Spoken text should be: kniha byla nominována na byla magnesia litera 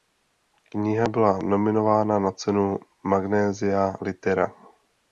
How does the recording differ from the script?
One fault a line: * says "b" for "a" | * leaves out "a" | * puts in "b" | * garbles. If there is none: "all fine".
* says "cenu" for "byla"